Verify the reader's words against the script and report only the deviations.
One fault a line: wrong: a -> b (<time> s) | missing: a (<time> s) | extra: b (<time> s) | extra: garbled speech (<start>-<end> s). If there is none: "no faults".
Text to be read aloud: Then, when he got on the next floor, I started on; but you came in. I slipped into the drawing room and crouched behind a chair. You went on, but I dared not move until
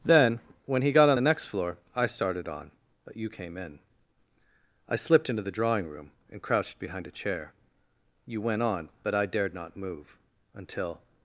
no faults